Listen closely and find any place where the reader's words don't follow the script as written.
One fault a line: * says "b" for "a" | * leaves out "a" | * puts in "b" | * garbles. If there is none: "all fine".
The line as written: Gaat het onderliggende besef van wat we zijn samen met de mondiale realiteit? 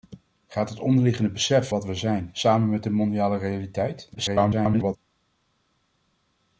* leaves out "van"
* garbles